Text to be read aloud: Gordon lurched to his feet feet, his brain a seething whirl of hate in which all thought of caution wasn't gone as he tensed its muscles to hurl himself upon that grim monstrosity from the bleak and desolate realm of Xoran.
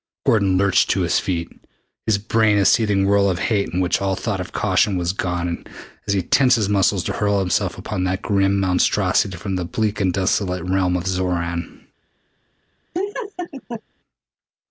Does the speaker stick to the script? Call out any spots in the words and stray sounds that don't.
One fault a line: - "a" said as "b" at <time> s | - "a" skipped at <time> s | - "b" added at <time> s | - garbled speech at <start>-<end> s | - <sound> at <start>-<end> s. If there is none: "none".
- "feet" skipped at 1.5 s
- "wasn't" said as "was" at 5.0 s
- "its" said as "his" at 6.5 s
- laugh at 12.9-13.8 s